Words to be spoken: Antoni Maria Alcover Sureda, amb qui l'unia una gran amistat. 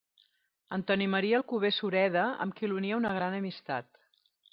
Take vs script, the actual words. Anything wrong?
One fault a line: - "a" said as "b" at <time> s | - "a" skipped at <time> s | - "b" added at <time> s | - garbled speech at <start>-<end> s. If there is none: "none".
none